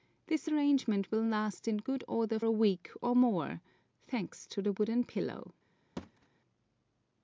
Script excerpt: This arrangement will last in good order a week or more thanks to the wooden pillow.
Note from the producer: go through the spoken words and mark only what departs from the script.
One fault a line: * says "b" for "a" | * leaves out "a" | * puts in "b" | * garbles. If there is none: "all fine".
all fine